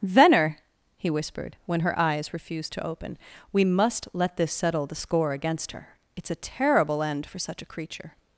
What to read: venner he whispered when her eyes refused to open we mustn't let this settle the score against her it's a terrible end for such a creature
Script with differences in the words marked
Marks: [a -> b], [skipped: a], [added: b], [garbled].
venner he whispered when her eyes refused to open we [mustn't -> must] let this settle the score against her it's a terrible end for such a creature